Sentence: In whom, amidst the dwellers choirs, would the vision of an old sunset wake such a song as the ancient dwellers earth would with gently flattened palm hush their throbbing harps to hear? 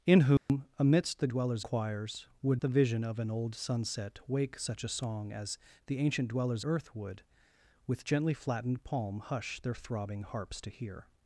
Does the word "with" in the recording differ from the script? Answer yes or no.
no